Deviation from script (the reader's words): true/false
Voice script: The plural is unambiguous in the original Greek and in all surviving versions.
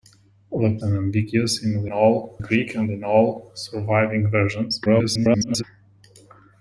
true